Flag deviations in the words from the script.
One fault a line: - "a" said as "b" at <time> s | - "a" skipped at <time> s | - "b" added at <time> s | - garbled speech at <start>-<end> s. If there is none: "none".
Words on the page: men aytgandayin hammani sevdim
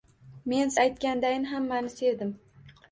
none